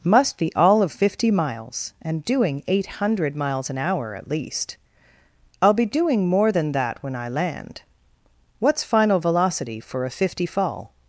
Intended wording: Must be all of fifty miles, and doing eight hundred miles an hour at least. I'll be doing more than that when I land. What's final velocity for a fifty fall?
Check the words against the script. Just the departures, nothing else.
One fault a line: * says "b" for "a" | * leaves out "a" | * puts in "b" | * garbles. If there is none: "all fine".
all fine